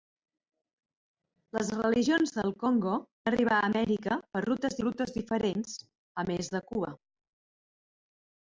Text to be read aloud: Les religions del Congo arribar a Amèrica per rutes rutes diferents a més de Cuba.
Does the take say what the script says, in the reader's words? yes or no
yes